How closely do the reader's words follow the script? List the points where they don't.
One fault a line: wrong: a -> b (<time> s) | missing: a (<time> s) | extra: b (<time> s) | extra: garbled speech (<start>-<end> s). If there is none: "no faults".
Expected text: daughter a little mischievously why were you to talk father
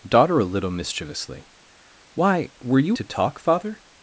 no faults